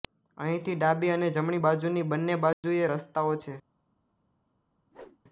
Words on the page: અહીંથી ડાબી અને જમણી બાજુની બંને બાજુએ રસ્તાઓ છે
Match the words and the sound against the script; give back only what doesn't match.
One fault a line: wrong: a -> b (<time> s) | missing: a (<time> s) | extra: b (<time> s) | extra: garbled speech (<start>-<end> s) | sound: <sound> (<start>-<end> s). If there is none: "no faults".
sound: dropout (2.5-2.6 s)
sound: whoosh (4.9-5.2 s)